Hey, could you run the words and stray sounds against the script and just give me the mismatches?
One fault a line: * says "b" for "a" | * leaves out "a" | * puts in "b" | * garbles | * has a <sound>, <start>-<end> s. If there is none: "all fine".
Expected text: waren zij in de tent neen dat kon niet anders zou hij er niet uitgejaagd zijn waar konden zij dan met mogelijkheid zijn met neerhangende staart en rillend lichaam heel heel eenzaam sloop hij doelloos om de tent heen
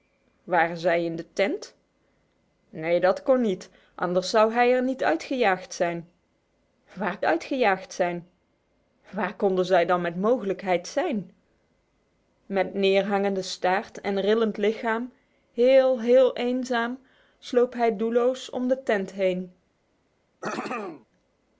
* puts in "uitgejaagd zijn waar"
* has a throat clearing, 20.4-21.1 s